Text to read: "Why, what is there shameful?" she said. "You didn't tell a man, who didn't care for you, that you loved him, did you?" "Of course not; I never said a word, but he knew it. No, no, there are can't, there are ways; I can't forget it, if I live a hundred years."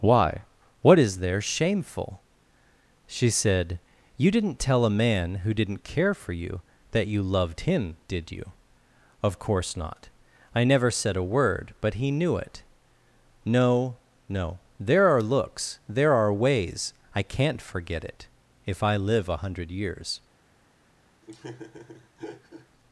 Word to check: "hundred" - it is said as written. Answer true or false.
true